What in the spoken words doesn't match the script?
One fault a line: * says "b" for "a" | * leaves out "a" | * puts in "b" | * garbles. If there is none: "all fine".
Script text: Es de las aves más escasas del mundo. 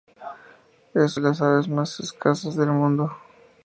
all fine